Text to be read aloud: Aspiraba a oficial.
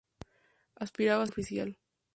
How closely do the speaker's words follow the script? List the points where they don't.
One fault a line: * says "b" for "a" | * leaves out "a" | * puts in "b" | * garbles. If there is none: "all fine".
all fine